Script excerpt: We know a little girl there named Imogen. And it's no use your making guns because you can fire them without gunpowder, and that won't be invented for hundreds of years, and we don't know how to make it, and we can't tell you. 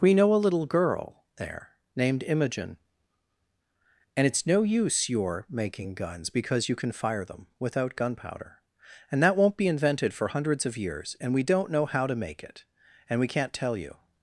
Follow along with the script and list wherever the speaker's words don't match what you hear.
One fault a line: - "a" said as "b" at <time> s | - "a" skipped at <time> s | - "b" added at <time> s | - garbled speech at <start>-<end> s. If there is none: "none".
none